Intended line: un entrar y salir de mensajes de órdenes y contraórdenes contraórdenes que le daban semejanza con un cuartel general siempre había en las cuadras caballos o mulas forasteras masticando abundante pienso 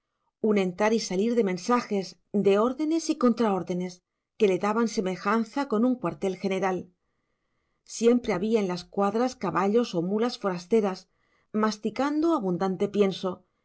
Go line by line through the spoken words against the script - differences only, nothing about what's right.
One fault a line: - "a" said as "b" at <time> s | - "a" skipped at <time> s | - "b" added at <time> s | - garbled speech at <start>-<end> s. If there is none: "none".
- "contraórdenes" skipped at 4.0 s